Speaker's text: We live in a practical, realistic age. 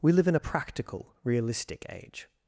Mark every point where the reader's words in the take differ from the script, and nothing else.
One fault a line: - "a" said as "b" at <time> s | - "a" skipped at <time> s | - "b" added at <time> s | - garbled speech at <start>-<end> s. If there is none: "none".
none